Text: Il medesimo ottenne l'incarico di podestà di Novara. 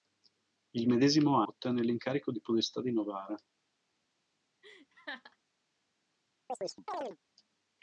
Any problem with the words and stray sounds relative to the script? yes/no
yes